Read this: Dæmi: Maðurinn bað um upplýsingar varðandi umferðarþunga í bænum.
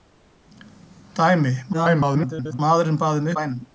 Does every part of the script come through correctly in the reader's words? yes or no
no